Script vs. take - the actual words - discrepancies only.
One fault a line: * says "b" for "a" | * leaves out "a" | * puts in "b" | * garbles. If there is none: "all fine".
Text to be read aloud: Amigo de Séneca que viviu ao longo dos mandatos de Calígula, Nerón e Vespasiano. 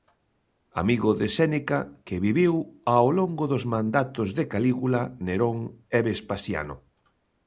all fine